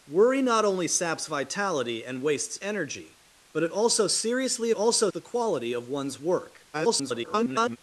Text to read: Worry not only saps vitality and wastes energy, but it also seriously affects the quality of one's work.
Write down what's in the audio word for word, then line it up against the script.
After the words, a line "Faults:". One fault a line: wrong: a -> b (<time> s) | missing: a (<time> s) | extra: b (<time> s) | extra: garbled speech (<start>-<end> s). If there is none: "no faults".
Worry not only saps vitality and wastes energy, but it also seriously also the quality of one's work. [garbled]
Faults:
wrong: affects -> also (4.7 s)
extra: garbled speech (6.7-7.8 s)